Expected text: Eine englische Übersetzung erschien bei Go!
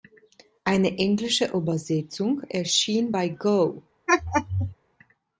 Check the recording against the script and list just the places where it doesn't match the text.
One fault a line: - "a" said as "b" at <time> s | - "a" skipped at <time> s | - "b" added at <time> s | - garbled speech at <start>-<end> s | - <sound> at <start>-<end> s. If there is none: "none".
- laugh at 4.1-4.8 s